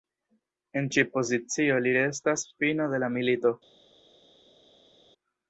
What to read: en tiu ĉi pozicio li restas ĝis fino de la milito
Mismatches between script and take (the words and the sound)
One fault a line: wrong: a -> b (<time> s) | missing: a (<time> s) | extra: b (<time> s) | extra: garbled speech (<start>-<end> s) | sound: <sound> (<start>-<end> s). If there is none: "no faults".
missing: tiu (0.8 s)
missing: ĝis (2.5 s)